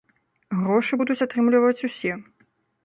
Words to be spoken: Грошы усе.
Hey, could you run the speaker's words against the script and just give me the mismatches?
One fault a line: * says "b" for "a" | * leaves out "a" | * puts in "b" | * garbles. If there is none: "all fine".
* puts in "будуць атрымліваць"